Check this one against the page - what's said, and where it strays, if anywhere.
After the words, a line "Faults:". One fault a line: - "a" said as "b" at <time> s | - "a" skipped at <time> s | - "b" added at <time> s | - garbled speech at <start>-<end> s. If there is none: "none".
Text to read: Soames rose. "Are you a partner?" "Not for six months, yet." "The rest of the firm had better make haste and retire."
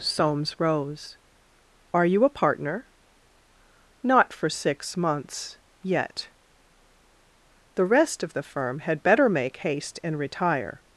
Soames rose. "Are you a partner?" "Not for six months, yet." "The rest of the firm had better make haste and retire."
Faults:
none